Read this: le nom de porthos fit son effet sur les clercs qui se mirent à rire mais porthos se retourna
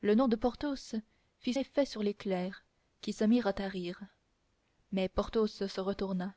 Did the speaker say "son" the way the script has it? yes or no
no